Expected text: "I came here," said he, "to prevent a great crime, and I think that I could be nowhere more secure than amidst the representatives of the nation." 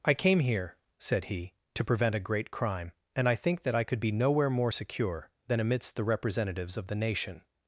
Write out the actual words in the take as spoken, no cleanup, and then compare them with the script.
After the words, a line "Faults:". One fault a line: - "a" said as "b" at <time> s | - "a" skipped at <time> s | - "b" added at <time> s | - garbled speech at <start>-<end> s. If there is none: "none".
"I came here," said he, "to prevent a great crime, and I think that I could be nowhere more secure than amidst the representatives of the nation."
Faults:
none